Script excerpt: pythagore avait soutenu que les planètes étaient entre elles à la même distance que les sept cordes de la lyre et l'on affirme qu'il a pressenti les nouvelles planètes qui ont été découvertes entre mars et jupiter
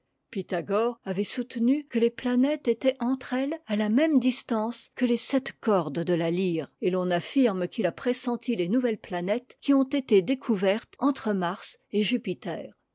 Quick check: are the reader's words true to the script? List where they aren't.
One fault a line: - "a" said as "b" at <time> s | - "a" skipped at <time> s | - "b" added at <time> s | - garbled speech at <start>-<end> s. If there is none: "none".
none